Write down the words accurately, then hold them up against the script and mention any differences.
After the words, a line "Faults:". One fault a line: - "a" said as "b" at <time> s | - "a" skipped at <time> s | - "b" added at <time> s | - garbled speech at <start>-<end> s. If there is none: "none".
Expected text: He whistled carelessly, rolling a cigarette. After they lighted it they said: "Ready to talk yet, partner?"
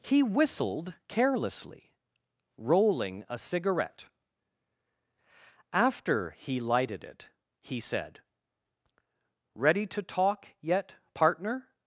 He whistled carelessly, rolling a cigarette. After he lighted it he said: "Ready to talk yet, partner?"
Faults:
- "they" said as "he" at 6.3 s
- "they" said as "he" at 7.6 s